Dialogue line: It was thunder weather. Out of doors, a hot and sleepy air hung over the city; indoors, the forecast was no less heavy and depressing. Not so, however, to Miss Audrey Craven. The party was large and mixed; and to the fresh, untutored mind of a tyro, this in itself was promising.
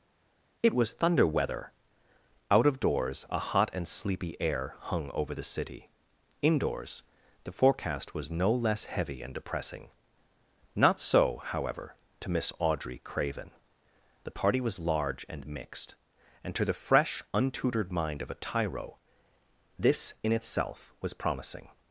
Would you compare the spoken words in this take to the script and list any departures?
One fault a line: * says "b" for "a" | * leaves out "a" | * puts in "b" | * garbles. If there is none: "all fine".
all fine